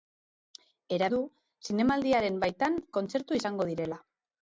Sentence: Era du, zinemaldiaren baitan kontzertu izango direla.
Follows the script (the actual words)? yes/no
yes